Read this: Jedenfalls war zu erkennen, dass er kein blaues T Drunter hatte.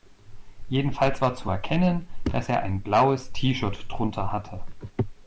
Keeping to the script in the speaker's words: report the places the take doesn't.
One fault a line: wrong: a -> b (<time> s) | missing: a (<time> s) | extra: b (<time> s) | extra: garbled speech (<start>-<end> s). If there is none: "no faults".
wrong: kein -> ein (2.6 s)
extra: Shirt (3.5 s)